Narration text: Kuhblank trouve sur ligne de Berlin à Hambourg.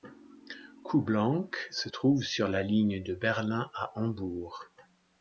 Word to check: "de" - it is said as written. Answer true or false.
true